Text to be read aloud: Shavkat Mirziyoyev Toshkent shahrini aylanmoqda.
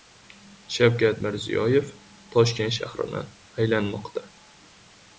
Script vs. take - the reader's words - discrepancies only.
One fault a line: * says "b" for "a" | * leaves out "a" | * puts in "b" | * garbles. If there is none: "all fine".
all fine